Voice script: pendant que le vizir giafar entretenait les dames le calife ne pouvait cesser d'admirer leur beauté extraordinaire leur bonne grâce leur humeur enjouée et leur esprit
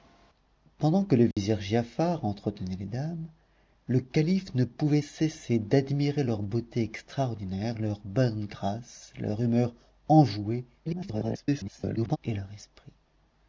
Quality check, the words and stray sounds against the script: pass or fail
fail